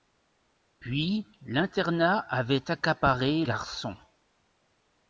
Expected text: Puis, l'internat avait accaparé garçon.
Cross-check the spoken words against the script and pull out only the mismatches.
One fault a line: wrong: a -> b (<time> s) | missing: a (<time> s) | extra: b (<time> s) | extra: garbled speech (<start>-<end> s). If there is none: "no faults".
no faults